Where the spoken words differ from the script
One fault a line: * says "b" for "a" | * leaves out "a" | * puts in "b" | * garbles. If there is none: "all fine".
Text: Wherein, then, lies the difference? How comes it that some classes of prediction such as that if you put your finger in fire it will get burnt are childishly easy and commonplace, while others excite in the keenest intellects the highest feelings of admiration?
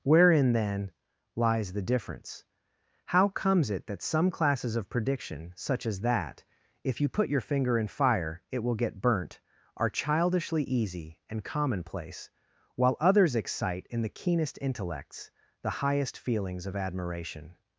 all fine